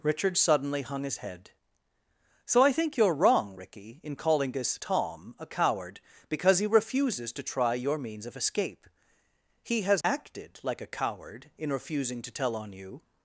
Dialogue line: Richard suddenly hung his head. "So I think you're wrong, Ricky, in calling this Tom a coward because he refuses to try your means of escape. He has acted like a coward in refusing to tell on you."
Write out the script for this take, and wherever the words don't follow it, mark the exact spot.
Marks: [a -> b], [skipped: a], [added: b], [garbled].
Richard suddenly hung his head. "So I think you're wrong, Ricky, in calling this Tom a coward because he refuses to try your means of escape. He has acted like a coward in refusing to tell on you."